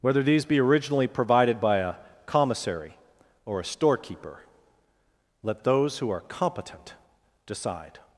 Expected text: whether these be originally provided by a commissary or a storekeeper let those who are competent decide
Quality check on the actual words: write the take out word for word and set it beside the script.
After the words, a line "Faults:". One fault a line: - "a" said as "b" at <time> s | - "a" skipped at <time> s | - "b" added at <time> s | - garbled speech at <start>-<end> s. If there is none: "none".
whether these be originally provided by a commissary or a storekeeper let those who are competent decide
Faults:
none